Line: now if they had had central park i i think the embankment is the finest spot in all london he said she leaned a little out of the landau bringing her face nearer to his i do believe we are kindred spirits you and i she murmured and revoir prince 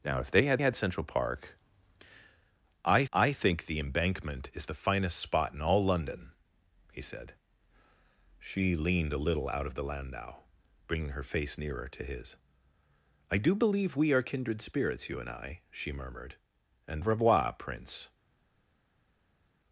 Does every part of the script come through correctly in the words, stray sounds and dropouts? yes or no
yes